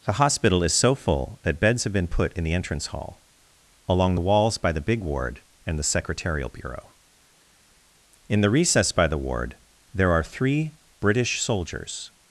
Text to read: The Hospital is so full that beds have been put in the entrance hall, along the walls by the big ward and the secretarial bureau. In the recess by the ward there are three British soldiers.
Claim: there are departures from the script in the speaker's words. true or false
false